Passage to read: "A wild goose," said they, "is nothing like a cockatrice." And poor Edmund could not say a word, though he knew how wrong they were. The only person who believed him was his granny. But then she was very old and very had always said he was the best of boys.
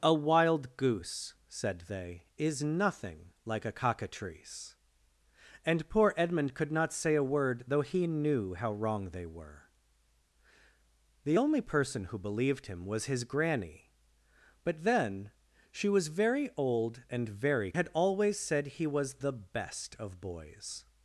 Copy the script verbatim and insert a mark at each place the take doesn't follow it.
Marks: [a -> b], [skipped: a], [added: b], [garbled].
"A wild goose," said they, "is nothing like a cockatrice." And poor Edmund could not say a word, though he knew how wrong they were. The only person who believed him was his granny. But then she was very old and very had always said he was the best of boys.